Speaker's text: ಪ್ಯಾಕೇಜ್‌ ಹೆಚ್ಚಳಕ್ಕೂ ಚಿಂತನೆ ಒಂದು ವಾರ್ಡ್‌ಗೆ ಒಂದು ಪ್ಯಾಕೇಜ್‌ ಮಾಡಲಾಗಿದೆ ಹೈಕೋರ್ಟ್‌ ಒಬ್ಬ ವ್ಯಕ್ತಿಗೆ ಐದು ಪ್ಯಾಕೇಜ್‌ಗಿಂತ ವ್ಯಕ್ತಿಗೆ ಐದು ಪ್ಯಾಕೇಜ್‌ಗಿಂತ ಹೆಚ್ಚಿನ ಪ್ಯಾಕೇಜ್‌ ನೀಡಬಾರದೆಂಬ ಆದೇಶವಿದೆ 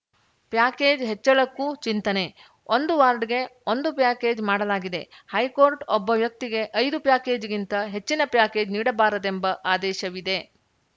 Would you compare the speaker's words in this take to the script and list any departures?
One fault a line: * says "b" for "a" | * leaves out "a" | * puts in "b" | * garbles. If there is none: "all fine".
* leaves out "ವ್ಯಕ್ತಿಗೆ ಐದು ಪ್ಯಾಕೇಜ್‌ಗಿಂತ"